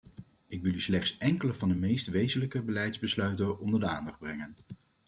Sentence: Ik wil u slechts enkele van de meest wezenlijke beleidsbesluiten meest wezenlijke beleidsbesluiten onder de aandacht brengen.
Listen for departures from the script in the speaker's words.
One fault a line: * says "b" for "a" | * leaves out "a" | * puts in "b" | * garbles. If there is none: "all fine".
* leaves out "meest wezenlijke beleidsbesluiten"